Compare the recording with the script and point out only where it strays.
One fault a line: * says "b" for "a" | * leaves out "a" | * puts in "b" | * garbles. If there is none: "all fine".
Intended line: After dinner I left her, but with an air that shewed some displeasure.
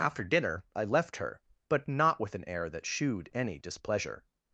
* puts in "not"
* says "any" for "some"